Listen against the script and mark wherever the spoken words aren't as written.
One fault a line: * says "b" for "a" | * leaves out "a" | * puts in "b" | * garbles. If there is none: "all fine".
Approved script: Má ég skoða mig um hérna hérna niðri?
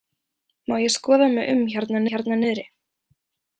all fine